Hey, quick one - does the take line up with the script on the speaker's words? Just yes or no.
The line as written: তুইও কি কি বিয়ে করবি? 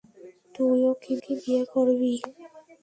yes